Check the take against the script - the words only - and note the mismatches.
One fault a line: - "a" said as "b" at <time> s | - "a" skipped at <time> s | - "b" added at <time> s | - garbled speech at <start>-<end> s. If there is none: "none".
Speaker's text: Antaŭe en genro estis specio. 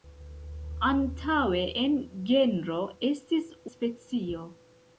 none